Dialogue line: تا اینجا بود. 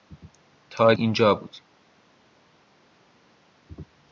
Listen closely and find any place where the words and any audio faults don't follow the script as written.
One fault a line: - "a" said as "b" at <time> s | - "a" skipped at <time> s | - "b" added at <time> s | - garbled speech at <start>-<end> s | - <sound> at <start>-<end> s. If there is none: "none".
none